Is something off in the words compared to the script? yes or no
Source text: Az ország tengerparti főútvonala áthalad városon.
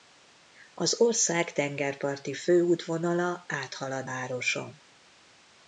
no